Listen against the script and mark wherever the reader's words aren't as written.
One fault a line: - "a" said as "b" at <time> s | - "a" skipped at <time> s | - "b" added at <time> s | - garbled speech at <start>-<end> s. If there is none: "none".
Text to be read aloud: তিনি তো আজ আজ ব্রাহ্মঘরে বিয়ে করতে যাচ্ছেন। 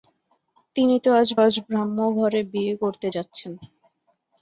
none